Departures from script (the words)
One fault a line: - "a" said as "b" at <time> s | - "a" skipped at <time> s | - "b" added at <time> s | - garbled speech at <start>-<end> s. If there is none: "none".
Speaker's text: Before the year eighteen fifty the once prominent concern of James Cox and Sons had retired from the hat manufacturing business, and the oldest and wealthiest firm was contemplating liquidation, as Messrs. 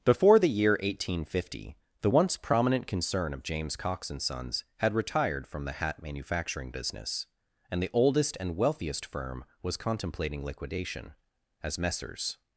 none